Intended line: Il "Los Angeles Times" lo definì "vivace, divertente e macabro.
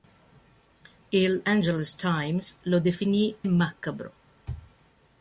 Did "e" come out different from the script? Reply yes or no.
yes